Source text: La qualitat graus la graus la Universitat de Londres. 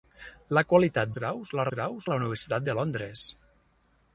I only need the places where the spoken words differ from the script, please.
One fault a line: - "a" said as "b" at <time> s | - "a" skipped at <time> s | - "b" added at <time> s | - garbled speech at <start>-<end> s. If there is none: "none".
none